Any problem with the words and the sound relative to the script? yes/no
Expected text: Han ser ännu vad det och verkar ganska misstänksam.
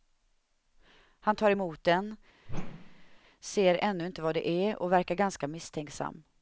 yes